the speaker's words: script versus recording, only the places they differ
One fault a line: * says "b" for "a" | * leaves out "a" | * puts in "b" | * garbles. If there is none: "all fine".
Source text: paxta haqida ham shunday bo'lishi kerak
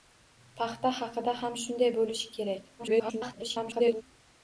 * garbles